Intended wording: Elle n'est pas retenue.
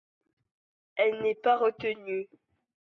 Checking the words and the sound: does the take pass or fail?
pass